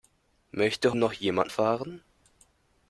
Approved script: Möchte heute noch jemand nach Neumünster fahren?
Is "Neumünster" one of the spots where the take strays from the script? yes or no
yes